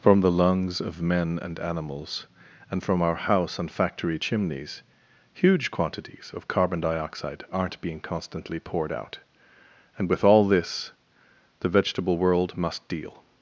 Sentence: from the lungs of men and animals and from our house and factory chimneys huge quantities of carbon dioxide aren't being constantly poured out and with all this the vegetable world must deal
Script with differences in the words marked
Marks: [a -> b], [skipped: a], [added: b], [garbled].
from the lungs of men and animals and from our house and factory chimneys huge quantities of carbon dioxide aren't being constantly poured out and with all this the vegetable world must deal